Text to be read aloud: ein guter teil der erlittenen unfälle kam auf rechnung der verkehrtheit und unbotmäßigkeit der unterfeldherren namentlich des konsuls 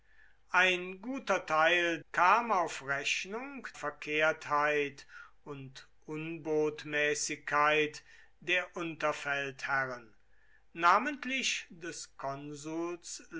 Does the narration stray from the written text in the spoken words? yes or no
yes